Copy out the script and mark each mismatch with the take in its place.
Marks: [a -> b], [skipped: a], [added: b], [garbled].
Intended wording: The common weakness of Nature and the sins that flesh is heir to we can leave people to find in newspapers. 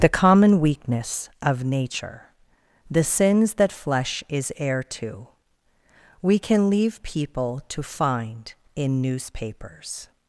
The common weakness of Nature [skipped: and] the sins that flesh is heir to we can leave people to find in newspapers.